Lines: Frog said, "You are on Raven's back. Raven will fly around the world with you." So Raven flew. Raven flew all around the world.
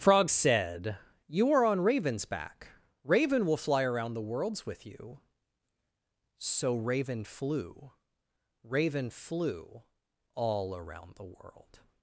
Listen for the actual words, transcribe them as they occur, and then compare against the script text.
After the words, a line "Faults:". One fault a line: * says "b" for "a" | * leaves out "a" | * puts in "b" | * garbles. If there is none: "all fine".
Frog said, "You are on Raven's back. Raven will fly around the worlds with you." So Raven flew. Raven flew all around the world.
Faults:
* says "worlds" for "world"